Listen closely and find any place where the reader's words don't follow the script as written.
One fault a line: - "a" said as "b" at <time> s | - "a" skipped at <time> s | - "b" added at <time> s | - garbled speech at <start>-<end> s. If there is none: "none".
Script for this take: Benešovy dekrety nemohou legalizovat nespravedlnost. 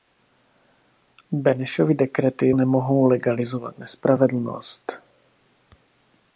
none